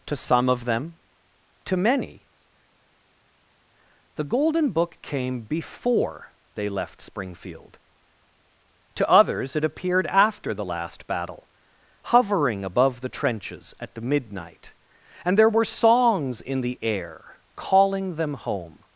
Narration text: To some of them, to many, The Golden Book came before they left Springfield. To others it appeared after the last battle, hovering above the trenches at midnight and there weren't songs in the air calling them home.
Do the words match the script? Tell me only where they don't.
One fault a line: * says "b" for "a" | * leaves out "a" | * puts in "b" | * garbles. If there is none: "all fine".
* says "were" for "weren't"